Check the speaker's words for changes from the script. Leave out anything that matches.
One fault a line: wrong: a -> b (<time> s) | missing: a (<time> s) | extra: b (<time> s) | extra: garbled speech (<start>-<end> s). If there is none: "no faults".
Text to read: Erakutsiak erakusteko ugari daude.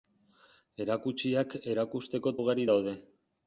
no faults